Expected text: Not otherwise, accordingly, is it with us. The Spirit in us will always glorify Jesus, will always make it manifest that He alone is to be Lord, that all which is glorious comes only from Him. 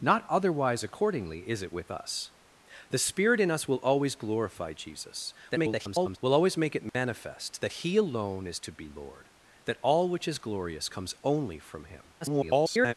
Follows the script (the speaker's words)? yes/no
no